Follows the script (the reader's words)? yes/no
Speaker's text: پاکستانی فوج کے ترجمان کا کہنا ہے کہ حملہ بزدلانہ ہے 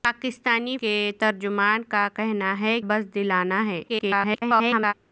no